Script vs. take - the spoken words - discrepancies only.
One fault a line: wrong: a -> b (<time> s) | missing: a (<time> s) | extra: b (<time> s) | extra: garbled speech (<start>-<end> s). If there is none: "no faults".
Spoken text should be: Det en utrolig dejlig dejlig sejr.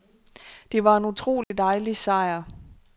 extra: var (0.8 s)
missing: dejlig (2.0 s)